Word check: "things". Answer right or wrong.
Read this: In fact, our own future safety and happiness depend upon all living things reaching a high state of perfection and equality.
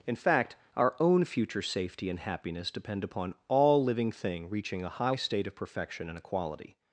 wrong